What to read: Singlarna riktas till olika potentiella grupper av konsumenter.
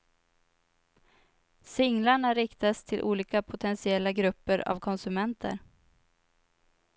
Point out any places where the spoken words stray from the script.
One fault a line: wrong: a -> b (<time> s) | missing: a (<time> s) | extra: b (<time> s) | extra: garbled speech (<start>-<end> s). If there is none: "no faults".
no faults